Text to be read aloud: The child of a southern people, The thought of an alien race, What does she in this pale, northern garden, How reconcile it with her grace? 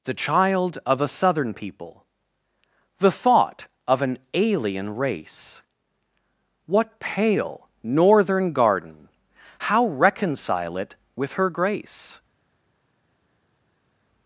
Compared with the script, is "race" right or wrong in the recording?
right